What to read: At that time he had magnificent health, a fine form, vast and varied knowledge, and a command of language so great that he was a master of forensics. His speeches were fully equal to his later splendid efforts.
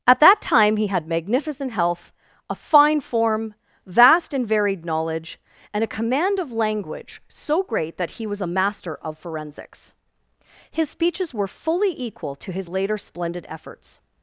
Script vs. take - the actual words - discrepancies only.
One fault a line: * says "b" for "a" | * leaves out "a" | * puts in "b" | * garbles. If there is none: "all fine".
all fine